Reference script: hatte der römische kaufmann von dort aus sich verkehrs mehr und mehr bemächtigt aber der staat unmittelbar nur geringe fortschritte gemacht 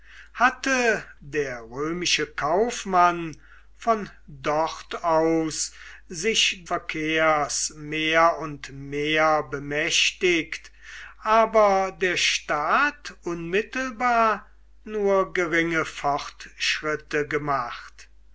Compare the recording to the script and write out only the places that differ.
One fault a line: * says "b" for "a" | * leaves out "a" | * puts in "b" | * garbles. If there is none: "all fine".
all fine